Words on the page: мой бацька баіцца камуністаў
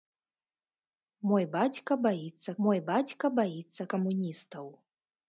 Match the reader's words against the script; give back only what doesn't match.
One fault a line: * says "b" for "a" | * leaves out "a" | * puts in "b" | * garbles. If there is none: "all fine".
* puts in "мой бацька баіцца"